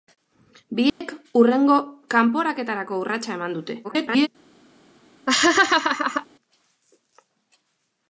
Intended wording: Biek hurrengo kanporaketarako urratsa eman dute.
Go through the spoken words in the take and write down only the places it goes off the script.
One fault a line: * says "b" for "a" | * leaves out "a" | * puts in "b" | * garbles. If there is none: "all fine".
* garbles